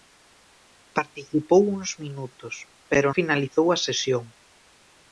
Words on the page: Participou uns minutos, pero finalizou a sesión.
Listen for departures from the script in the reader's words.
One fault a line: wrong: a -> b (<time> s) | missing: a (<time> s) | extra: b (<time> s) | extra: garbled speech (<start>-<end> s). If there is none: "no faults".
no faults